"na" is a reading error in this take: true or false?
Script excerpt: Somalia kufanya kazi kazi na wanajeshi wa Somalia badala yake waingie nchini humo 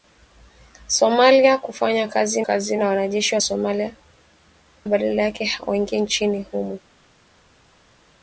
false